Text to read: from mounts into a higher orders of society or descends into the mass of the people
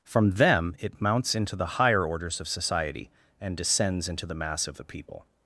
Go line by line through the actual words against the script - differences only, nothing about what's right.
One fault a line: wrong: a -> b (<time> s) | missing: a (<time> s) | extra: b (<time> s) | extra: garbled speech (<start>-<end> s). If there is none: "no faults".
extra: them it (0.3 s)
wrong: a -> the (1.6 s)
wrong: or -> and (3.4 s)